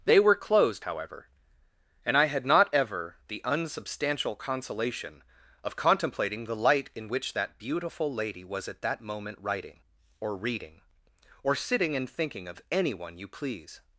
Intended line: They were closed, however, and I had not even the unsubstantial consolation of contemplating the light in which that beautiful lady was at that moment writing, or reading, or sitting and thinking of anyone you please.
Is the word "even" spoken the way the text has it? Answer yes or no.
no